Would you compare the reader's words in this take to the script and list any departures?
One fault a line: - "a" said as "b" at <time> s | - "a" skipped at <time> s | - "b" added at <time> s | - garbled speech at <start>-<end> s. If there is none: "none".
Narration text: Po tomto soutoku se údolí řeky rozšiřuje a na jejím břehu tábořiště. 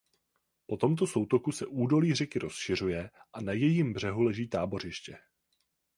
- "leží" added at 4.2 s